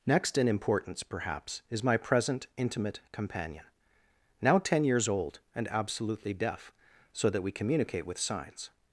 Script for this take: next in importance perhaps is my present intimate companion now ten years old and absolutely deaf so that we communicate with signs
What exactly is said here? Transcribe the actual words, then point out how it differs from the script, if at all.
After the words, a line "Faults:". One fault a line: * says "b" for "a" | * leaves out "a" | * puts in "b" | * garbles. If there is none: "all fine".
next in importance perhaps is my present intimate companion now ten years old and absolutely deaf so that we communicate with signs
Faults:
all fine